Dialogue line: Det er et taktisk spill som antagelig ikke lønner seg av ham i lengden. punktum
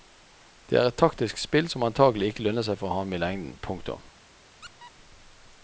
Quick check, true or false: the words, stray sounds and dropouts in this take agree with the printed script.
false